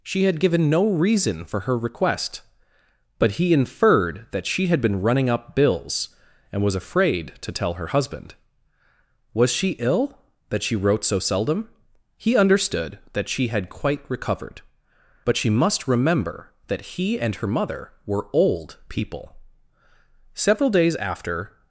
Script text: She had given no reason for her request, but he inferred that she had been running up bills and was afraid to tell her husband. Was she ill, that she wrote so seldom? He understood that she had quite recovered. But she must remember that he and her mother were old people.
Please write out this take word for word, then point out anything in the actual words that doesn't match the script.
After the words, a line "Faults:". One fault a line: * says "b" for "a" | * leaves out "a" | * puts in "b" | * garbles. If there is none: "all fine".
She had given no reason for her request, but he inferred that she had been running up bills and was afraid to tell her husband. Was she ill, that she wrote so seldom? He understood that she had quite recovered. But she must remember that he and her mother were old people. Several days after
Faults:
* puts in "Several days after"